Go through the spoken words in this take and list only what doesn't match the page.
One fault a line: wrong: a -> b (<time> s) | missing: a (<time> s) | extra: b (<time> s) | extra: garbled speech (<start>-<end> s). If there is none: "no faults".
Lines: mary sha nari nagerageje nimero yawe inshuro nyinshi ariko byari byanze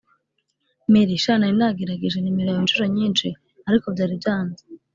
no faults